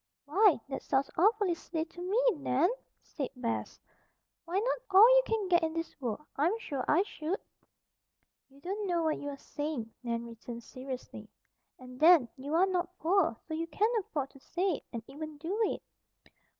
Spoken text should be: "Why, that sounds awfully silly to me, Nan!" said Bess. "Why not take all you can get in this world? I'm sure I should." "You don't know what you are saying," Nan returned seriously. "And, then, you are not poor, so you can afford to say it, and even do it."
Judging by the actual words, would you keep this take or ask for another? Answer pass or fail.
fail